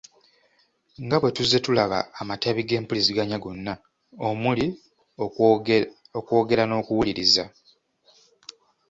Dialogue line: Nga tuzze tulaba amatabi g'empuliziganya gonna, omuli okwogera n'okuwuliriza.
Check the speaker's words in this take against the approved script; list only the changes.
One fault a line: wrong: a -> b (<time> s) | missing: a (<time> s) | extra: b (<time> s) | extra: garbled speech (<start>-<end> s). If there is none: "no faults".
extra: bwe (1.2 s)